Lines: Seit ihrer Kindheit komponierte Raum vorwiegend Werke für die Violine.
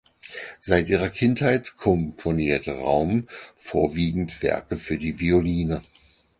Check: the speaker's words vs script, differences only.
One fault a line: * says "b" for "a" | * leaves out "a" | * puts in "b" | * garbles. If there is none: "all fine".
all fine